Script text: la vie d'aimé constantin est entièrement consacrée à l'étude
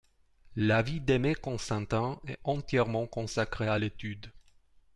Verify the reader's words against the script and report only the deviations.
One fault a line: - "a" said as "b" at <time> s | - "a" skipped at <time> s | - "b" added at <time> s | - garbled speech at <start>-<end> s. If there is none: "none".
none